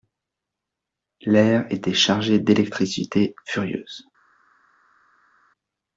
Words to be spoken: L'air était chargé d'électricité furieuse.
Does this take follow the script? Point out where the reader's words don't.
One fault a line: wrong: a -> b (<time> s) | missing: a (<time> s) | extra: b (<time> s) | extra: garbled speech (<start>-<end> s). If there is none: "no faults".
no faults